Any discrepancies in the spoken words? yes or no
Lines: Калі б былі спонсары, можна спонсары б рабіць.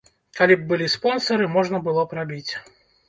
yes